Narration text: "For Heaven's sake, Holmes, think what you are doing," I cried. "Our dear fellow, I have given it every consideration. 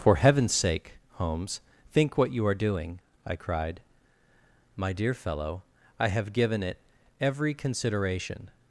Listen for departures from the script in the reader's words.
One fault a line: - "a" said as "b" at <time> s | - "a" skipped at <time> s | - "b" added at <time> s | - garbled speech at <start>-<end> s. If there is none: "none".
- "Our" said as "My" at 4.8 s